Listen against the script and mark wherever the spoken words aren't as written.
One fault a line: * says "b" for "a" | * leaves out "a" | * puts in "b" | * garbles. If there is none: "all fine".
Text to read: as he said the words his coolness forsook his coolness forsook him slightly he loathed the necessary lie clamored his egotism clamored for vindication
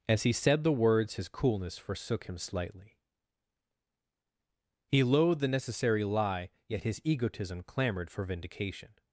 * leaves out "his coolness forsook"
* says "yet" for "clamored"